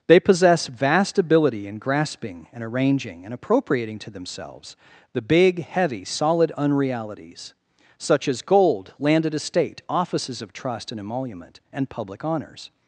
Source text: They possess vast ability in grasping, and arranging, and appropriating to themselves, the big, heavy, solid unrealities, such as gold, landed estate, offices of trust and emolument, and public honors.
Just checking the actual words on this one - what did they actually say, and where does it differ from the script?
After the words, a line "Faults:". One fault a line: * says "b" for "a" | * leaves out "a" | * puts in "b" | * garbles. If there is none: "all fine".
They possess vast ability in grasping, and arranging, and appropriating to themselves, the big, heavy, solid unrealities, such as gold, landed estate, offices of trust and emolument, and public honors.
Faults:
all fine